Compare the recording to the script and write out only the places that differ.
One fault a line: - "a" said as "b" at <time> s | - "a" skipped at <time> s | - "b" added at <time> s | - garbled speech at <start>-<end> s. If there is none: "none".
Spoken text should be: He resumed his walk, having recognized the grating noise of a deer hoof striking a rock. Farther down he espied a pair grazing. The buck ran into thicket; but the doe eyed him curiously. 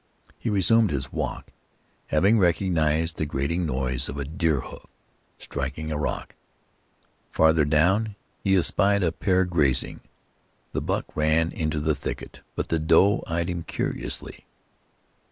- "the" added at 11.8 s